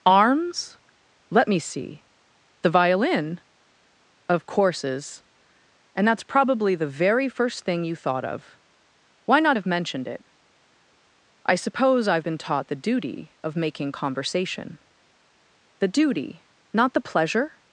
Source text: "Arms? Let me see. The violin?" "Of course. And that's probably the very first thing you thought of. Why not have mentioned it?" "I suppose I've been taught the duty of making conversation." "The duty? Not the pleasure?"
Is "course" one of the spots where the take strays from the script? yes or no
yes